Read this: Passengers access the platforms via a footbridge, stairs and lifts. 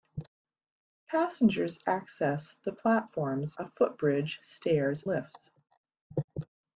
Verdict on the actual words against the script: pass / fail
fail